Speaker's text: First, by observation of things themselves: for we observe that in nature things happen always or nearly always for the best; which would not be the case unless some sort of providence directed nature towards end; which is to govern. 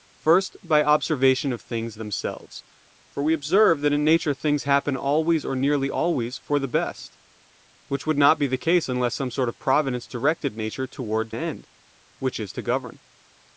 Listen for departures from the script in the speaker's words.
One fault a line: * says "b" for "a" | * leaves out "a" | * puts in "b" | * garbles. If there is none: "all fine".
all fine